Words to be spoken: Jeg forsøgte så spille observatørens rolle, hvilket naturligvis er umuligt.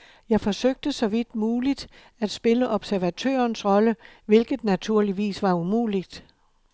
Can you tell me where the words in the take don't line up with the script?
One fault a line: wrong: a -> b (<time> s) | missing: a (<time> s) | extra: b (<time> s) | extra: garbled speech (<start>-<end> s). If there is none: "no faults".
extra: vidt muligt at (1.0 s)
wrong: er -> var (5.4 s)